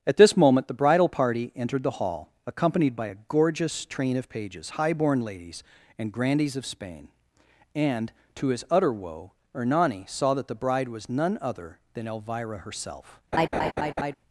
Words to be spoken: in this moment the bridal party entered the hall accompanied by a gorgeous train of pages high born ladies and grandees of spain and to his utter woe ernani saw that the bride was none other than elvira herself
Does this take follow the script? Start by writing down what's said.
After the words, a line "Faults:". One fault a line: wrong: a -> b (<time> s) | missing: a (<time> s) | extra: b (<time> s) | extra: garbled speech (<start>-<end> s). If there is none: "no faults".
at this moment the bridal party entered the hall accompanied by a gorgeous train of pages high born ladies and grandees of spain and to his utter woe ernani saw that the bride was none other than elvira herself
Faults:
wrong: in -> at (0.1 s)